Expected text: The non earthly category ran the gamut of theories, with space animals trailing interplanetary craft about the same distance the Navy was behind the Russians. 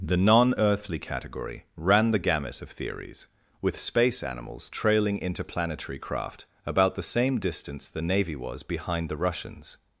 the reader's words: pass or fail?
pass